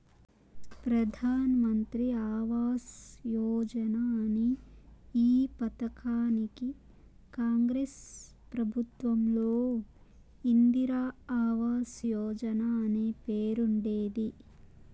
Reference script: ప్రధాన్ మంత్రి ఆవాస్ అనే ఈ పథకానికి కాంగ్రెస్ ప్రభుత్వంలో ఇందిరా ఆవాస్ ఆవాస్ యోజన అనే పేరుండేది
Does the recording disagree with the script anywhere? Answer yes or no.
yes